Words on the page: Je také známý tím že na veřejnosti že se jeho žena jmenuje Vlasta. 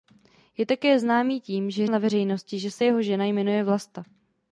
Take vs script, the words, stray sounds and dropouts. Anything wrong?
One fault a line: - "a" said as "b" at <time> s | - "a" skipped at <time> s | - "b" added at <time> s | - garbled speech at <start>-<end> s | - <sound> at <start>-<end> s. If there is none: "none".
none